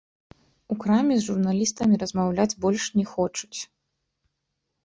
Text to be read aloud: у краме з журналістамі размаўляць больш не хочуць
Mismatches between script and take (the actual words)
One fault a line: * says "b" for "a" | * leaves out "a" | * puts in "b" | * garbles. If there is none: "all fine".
all fine